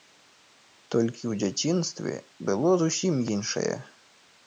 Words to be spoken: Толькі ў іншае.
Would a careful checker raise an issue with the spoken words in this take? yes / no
yes